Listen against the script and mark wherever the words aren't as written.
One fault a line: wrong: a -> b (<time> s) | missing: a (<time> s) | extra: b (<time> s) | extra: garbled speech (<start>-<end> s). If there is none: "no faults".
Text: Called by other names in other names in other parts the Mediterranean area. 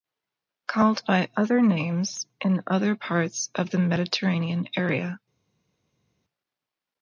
wrong: names in other parts -> parts of (2.9 s)